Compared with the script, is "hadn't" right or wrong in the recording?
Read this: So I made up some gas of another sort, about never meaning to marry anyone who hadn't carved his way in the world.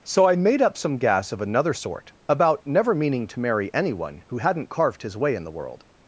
right